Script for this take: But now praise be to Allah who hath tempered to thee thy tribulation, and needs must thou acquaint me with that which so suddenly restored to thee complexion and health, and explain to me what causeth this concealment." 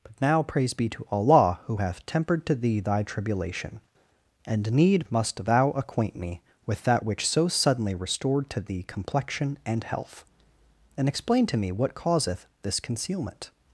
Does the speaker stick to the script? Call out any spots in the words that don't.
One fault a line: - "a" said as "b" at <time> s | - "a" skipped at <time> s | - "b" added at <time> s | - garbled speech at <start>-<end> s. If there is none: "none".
- "needs" said as "need" at 4.7 s